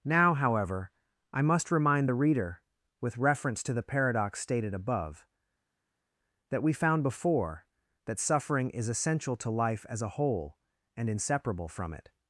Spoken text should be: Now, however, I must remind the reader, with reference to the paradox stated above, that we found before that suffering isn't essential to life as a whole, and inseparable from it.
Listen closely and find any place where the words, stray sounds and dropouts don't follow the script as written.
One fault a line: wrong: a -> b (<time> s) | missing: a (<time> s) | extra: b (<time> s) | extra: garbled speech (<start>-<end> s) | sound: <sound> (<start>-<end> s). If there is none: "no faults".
wrong: isn't -> is (8.7 s)